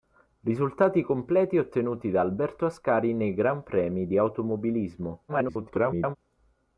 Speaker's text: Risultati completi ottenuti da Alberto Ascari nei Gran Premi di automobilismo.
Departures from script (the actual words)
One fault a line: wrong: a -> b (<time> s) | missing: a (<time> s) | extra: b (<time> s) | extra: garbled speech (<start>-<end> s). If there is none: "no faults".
extra: garbled speech (5.3-6.2 s)